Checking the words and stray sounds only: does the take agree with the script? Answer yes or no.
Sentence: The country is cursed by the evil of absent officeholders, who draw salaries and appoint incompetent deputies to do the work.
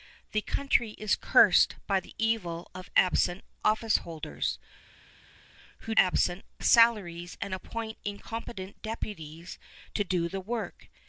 no